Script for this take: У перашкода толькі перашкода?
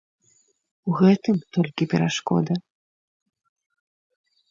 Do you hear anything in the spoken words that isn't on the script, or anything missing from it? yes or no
yes